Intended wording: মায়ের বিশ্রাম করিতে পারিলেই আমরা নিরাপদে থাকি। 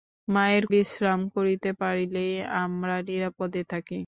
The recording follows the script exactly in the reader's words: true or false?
true